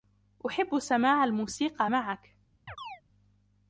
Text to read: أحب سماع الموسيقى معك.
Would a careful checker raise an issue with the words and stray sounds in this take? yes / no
yes